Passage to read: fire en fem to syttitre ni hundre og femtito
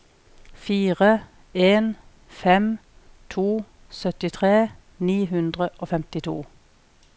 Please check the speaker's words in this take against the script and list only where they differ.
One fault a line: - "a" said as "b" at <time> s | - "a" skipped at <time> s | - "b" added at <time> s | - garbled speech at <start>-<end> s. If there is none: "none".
none